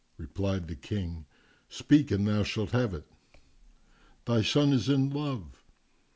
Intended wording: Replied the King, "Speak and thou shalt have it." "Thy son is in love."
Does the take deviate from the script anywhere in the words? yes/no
no